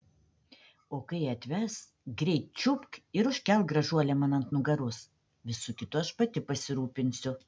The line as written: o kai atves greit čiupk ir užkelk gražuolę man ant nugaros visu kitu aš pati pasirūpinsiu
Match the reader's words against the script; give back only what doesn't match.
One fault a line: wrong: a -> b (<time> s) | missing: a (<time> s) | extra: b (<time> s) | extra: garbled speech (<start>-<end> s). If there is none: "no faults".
no faults